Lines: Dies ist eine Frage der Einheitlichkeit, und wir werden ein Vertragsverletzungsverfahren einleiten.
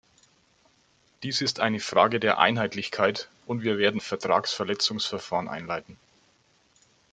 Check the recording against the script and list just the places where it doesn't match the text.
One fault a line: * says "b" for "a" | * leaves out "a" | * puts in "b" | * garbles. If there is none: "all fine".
* leaves out "ein"